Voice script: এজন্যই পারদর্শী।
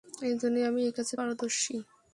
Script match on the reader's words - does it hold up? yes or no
no